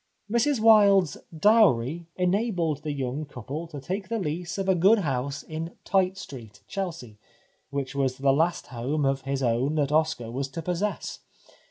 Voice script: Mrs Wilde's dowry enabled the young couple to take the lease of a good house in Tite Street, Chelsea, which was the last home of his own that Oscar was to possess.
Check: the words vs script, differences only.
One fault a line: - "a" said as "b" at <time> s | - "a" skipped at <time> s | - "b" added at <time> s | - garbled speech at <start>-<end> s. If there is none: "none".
none